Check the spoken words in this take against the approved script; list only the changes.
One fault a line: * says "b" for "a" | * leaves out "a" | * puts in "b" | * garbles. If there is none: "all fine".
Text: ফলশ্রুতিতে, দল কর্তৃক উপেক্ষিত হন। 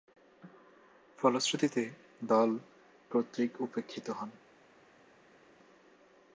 all fine